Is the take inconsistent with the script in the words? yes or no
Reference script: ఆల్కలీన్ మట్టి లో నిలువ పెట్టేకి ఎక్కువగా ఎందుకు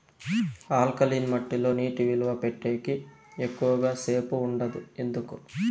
yes